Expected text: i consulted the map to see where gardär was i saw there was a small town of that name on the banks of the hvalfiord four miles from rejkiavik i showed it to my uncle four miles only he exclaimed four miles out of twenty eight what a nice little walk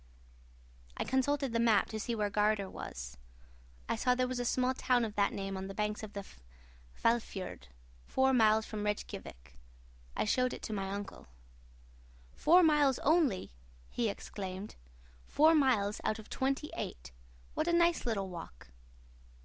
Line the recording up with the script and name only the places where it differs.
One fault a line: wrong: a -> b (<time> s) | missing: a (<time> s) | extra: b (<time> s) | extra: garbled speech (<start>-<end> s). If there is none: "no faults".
no faults